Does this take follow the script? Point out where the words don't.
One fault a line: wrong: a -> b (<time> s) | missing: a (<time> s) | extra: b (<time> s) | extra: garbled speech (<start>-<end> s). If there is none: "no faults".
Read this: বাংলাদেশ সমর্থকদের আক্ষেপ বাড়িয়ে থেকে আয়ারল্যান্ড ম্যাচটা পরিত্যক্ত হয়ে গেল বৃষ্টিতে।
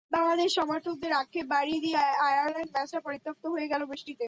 wrong: থেকে -> দিয়ে (1.8 s)